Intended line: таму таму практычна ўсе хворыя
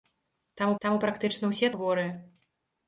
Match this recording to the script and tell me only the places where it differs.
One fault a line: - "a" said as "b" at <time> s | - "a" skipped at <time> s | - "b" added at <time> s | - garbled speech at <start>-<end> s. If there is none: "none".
none